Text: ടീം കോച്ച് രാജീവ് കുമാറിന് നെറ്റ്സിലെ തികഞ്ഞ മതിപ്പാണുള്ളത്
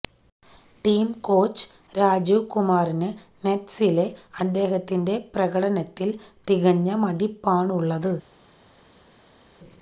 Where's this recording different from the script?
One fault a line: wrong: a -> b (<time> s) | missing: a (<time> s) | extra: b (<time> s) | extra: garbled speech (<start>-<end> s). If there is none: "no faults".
extra: അദ്ദേഹത്തിന്റെ പ്രകടനത്തില് (4.4 s)